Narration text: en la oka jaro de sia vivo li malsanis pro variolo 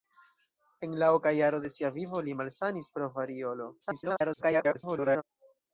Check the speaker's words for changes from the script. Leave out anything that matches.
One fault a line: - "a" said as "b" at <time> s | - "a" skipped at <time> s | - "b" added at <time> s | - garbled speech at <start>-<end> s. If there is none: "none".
- garbled speech at 3.8-5.2 s